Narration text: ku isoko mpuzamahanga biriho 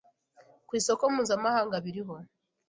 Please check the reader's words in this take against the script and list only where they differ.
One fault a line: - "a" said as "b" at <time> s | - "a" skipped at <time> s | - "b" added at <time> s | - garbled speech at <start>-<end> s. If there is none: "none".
none